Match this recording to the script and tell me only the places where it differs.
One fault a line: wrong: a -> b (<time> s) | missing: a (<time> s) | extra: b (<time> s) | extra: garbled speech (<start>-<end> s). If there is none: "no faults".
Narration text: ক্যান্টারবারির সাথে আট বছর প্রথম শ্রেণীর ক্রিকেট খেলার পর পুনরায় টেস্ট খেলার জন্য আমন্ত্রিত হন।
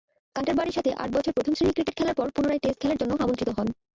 no faults